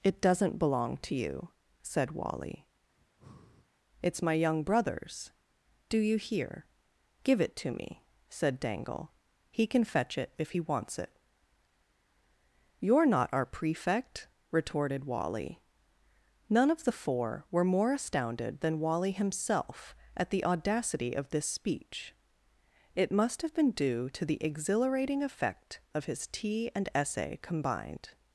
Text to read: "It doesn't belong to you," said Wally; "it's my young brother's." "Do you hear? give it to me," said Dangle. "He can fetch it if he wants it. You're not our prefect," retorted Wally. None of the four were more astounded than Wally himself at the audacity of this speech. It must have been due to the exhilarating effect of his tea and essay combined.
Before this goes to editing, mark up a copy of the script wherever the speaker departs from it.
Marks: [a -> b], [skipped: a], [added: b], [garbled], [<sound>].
"It doesn't belong to you," said Wally; [breath] "it's my young brother's." "Do you hear? give it to me," said Dangle. "He can fetch it if he wants it. You're not our prefect," retorted Wally. None of the four were more astounded than Wally himself at the audacity of this speech. It must have been due to the exhilarating effect of his tea and essay combined.